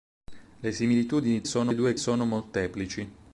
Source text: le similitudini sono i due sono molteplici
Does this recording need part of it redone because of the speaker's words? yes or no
no